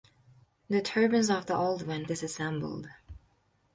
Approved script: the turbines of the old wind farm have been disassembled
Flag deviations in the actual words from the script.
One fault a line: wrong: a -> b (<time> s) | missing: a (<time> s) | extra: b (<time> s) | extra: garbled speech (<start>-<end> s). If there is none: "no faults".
missing: farm have been (2.1 s)